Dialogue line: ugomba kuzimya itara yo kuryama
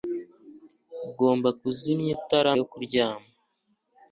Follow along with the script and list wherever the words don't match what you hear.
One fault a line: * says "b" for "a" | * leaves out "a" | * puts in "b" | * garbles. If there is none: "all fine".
all fine